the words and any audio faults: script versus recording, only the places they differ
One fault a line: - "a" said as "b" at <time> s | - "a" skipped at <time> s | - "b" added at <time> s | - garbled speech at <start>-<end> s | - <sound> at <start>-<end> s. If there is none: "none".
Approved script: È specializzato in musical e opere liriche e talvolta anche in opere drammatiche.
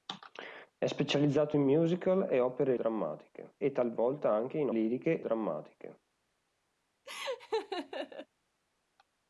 - "liriche" said as "drammatiche" at 2.7 s
- "opere" said as "liriche" at 4.7 s
- laugh at 7.1-8.3 s